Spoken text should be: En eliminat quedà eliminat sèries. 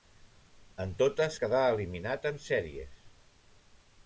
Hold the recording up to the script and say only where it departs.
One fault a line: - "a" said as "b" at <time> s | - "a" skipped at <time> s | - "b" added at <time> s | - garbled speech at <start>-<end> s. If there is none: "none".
- "eliminat" said as "totes" at 1.0 s
- "en" added at 2.3 s